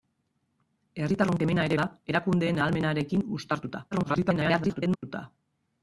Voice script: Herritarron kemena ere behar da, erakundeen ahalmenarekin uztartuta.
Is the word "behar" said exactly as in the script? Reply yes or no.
no